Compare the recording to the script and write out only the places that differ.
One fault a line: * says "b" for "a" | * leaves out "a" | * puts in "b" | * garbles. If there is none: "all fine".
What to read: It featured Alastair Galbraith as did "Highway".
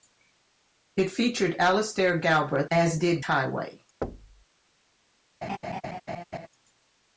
all fine